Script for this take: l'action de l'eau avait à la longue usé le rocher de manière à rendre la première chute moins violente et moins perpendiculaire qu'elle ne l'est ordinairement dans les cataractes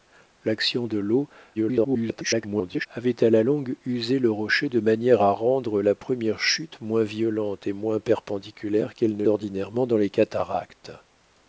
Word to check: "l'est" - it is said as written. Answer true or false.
false